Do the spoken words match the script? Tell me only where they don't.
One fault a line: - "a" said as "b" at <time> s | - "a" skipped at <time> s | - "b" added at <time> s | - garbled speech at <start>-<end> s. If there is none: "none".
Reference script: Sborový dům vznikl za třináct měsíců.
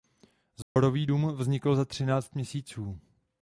none